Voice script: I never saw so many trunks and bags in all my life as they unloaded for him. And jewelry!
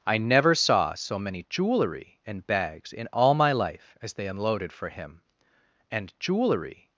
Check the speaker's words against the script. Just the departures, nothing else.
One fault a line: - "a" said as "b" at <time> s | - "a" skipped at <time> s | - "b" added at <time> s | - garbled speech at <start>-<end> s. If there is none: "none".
- "trunks" said as "jewelry" at 1.5 s